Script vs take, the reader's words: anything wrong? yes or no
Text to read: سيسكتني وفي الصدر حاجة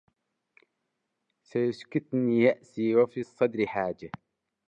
yes